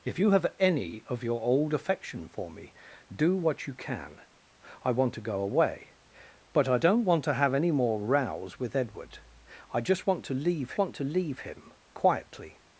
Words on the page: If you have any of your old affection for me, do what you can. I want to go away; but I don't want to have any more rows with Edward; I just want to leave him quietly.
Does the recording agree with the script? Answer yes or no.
no